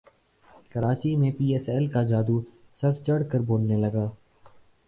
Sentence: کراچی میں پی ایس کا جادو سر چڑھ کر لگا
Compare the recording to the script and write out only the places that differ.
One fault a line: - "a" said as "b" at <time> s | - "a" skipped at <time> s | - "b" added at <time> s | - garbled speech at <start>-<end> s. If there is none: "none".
- "ایل" added at 1.7 s
- "بولنے" added at 3.5 s